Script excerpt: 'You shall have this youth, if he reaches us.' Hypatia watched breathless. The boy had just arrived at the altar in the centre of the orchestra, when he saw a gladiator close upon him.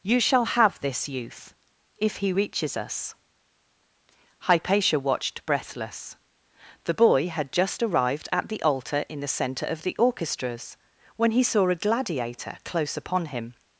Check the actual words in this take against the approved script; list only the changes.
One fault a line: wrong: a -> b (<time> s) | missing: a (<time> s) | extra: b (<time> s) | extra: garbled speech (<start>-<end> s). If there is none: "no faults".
wrong: orchestra -> orchestras (10.0 s)